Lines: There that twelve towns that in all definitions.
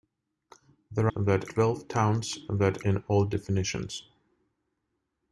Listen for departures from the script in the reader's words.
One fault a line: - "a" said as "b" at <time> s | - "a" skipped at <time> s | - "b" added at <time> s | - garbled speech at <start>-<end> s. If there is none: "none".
none